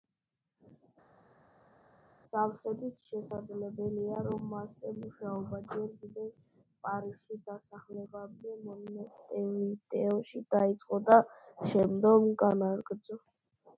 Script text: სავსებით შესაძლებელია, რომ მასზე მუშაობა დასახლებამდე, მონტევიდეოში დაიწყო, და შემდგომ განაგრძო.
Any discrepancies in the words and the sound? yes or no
yes